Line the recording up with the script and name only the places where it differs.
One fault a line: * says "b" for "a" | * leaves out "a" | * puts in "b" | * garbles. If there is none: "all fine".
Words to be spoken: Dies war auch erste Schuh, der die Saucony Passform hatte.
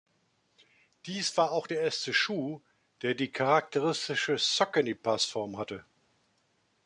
* puts in "der"
* puts in "charakteristische"